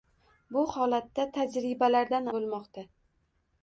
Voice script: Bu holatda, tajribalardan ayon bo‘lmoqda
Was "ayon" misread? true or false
true